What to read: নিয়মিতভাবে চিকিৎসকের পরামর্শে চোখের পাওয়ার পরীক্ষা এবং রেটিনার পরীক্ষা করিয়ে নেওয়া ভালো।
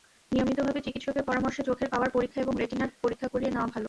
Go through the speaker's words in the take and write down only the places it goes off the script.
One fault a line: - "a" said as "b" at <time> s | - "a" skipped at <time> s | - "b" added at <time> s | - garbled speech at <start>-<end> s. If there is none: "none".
none